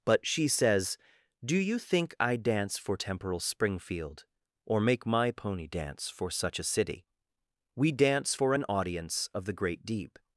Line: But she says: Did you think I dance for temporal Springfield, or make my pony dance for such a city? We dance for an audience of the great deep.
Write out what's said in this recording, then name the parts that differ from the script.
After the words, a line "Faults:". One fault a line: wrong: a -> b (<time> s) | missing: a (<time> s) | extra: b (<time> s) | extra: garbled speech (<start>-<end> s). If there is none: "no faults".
But she says: Do you think I dance for temporal Springfield, or make my pony dance for such a city? We dance for an audience of the great deep.
Faults:
wrong: Did -> Do (1.4 s)